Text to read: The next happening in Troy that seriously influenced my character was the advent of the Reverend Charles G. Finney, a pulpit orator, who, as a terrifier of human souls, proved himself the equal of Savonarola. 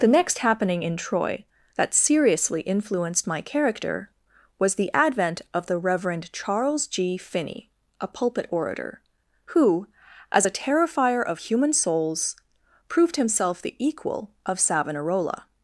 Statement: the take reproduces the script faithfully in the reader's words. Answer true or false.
true